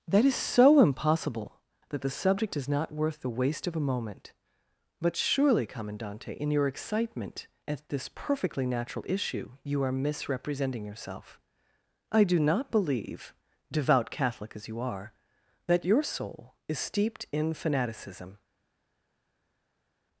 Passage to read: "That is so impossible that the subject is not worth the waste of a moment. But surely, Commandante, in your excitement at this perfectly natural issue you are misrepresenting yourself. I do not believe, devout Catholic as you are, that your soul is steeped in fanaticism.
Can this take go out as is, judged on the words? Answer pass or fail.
pass